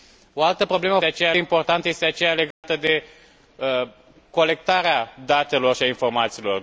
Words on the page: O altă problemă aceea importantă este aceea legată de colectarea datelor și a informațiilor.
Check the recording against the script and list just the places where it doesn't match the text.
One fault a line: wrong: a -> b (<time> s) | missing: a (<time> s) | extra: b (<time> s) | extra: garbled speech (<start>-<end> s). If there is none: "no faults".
no faults